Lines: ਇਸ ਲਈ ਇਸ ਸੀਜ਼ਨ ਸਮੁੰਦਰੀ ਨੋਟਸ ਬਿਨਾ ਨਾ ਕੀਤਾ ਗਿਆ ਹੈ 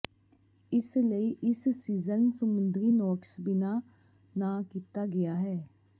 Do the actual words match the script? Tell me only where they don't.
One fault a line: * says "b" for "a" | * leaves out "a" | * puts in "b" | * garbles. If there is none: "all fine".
all fine